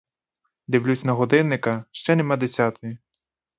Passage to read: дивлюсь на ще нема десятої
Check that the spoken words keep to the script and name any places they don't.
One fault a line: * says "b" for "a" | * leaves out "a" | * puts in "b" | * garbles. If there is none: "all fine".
* puts in "годинника"